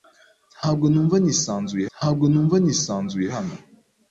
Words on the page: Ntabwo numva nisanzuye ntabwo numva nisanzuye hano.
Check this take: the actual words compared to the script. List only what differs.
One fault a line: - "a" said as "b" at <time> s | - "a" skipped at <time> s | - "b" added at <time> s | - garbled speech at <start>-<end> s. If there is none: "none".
none